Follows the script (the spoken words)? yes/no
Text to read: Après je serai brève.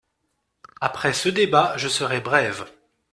no